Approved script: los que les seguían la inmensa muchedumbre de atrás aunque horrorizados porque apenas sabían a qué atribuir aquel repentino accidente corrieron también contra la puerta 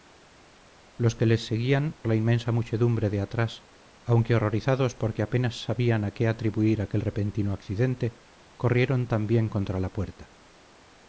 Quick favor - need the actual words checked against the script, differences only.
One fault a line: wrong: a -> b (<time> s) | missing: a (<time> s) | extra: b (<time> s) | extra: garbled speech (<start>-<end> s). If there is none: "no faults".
no faults